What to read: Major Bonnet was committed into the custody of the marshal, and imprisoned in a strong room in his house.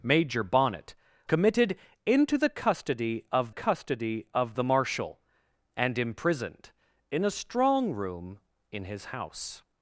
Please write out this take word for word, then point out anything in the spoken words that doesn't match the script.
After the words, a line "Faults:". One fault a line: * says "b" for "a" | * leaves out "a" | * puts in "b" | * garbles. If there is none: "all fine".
Major Bonnet committed into the custody of custody of the marshal, and imprisoned in a strong room in his house.
Faults:
* leaves out "was"
* puts in "custody of"